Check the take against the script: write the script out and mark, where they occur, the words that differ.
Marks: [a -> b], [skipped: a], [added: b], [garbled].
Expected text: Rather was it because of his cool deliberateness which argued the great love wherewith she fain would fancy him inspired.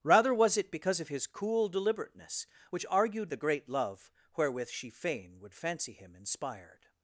Rather was it because of his cool deliberateness which argued the great love wherewith she fain would fancy him inspired.